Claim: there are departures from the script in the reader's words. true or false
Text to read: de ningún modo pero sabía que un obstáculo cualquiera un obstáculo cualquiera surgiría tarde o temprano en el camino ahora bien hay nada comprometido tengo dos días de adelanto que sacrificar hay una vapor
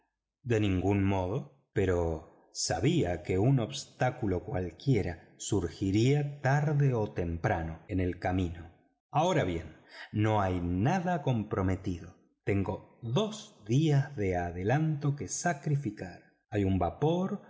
true